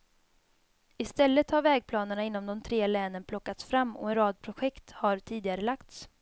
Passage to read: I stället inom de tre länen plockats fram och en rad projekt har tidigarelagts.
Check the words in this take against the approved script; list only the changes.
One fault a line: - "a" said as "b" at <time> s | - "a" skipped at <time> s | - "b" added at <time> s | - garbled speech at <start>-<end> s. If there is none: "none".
- "har vägplanerna" added at 1.5 s